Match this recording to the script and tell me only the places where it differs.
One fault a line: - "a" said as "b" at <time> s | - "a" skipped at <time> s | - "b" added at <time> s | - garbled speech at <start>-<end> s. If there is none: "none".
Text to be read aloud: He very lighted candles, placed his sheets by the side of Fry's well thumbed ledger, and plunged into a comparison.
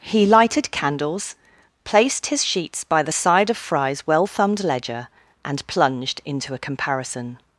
- "very" skipped at 0.2 s